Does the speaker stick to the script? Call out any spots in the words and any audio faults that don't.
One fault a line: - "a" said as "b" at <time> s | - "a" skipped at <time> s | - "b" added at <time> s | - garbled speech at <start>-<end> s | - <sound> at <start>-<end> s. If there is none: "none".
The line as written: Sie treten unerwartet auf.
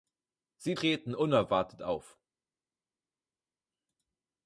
none